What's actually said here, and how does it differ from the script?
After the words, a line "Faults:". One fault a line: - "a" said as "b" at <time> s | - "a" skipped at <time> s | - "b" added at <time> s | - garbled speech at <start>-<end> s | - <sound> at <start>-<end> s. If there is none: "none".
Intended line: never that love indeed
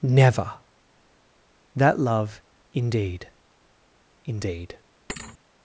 never that love indeed indeed
Faults:
- "indeed" added at 4.2 s
- thud at 5.1-5.4 s